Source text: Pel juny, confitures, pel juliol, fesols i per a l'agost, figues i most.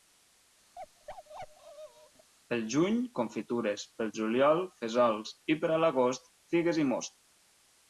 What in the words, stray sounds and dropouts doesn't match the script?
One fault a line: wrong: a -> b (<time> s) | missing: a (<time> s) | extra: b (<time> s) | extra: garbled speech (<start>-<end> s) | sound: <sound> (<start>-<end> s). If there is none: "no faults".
sound: bark (0.8-2.3 s)